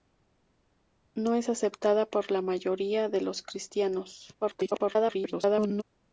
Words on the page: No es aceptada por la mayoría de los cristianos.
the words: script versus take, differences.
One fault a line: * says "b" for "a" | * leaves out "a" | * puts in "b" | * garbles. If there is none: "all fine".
* garbles